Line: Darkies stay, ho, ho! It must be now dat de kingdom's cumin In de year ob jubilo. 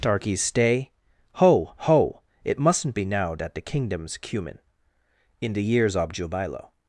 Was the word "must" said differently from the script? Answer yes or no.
yes